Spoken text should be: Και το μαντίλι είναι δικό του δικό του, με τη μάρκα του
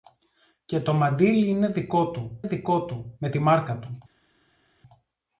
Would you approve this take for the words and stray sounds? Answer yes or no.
yes